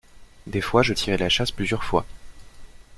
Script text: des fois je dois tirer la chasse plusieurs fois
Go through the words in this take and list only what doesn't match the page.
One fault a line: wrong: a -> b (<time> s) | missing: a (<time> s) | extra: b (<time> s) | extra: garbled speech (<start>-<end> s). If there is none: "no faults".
missing: dois (0.9 s)